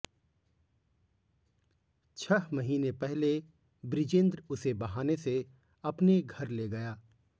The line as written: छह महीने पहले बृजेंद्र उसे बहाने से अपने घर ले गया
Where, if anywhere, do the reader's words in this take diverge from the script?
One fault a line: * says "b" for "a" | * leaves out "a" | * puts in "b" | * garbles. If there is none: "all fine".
all fine